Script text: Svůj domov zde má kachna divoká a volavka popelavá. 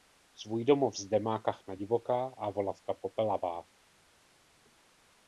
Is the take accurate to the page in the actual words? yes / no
yes